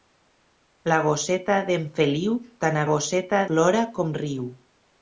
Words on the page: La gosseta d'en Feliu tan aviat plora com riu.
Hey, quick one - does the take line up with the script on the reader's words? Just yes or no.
no